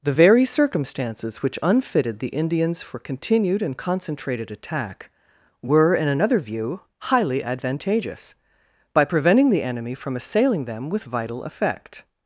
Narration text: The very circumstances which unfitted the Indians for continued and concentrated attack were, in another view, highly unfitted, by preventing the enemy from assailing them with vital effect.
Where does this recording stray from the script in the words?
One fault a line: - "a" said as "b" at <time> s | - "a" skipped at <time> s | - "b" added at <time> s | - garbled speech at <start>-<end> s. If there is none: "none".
- "unfitted" said as "advantageous" at 7.4 s